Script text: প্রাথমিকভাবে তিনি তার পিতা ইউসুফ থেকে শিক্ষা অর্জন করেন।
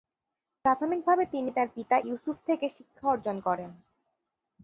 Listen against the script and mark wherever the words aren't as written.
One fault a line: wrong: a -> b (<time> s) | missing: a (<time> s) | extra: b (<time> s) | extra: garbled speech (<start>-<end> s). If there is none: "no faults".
no faults